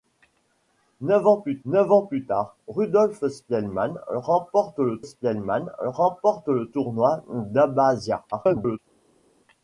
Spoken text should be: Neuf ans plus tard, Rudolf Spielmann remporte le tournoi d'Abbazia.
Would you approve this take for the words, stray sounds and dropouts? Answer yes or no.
no